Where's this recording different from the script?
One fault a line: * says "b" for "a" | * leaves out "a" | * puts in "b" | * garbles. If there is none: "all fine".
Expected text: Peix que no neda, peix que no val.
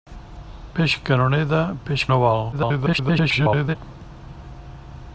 * leaves out "que"
* garbles